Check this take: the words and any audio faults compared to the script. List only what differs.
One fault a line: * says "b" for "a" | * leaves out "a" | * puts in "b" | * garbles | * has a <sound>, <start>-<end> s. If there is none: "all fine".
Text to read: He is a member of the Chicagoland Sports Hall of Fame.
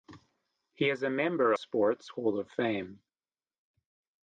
* leaves out "of the Chicagoland"